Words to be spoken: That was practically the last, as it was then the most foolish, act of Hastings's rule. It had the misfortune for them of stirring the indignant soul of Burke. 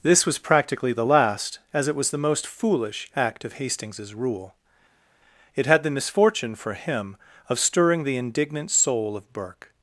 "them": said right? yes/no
no